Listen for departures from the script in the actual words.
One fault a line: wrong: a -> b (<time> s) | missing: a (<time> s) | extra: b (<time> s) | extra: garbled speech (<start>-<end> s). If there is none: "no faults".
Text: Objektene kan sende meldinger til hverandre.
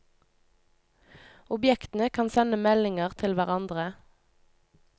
no faults